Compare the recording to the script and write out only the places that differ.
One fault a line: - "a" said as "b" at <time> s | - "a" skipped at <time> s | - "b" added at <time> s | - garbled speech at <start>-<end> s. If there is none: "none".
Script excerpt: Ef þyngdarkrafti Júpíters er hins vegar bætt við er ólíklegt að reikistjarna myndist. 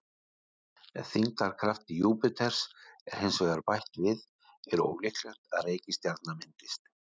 none